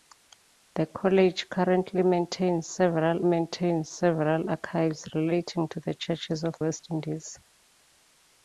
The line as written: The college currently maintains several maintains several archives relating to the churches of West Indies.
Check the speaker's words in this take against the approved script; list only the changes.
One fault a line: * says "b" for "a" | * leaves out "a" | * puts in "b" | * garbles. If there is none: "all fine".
all fine